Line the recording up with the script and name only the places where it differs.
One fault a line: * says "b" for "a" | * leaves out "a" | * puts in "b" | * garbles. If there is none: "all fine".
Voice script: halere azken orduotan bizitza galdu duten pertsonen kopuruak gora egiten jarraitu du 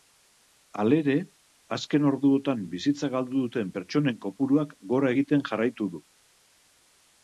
all fine